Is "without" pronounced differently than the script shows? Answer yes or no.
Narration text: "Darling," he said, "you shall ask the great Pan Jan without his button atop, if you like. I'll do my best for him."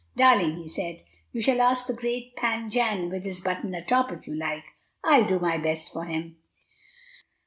yes